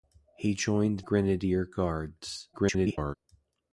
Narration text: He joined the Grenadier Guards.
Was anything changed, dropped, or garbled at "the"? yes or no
yes